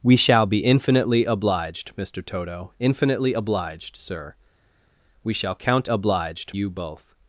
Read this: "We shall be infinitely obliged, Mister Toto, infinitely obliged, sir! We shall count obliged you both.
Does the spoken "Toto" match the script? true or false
true